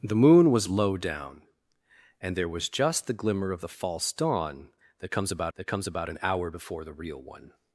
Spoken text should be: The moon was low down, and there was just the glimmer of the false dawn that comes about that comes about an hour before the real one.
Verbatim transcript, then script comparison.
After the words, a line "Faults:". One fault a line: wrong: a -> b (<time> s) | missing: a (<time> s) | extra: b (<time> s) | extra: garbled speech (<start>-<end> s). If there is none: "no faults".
The moon was low down, and there was just the glimmer of the false dawn that comes about that comes about an hour before the real one.
Faults:
no faults